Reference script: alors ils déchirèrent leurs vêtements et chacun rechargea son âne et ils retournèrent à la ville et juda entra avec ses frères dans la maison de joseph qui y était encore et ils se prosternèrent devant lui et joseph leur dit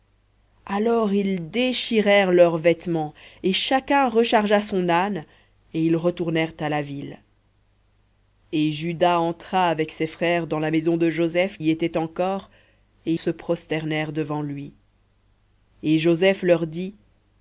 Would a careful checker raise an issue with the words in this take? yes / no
yes